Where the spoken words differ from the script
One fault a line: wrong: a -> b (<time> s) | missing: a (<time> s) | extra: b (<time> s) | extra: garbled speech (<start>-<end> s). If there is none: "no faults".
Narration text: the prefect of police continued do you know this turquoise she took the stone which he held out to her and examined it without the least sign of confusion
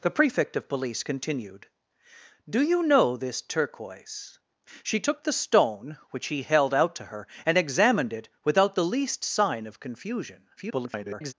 extra: garbled speech (10.6-11.3 s)